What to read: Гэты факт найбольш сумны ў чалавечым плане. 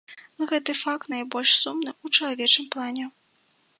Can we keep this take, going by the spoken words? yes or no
yes